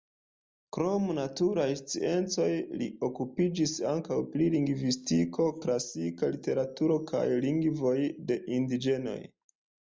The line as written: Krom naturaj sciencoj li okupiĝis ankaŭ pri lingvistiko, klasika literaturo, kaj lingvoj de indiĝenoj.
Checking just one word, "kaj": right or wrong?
right